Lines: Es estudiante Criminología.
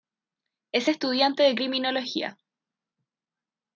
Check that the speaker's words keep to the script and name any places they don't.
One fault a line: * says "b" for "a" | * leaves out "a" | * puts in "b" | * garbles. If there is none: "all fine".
* puts in "de"